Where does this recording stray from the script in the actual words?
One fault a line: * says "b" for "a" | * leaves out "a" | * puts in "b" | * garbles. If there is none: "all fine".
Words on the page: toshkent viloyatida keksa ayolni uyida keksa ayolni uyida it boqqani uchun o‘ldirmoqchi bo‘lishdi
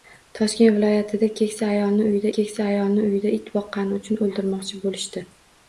all fine